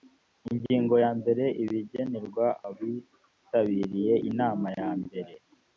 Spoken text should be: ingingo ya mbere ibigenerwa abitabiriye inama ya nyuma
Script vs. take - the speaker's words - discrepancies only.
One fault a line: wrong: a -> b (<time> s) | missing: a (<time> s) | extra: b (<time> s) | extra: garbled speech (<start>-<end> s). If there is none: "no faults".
wrong: nyuma -> mbere (5.0 s)